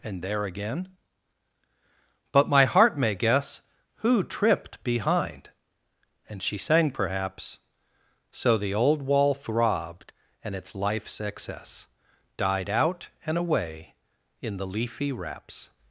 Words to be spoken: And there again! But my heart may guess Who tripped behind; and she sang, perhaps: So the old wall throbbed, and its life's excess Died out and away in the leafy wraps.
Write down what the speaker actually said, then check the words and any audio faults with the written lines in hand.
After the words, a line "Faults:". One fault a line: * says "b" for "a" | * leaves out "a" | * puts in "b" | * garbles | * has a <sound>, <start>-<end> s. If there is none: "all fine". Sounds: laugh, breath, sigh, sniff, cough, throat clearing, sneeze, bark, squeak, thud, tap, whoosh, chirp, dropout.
And there again! But my heart may guess Who tripped behind; and she sang, perhaps: So the old wall throbbed, and its life's excess Died out and away in the leafy wraps.
Faults:
all fine